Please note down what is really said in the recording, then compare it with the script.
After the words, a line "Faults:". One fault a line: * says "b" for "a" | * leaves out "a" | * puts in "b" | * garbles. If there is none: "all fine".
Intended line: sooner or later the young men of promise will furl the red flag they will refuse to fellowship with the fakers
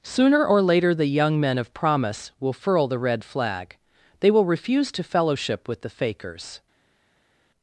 sooner or later the young men of promise will furl the red flag they will refuse to fellowship with the fakers
Faults:
all fine